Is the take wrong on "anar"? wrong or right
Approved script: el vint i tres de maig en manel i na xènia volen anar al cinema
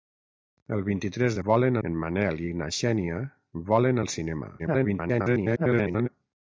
wrong